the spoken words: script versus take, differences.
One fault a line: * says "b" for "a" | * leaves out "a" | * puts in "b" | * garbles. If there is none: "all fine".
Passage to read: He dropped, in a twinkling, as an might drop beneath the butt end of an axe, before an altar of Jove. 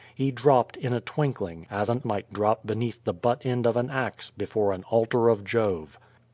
all fine